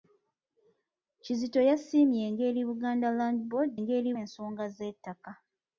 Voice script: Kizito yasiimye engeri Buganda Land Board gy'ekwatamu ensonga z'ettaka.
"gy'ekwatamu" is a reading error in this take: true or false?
true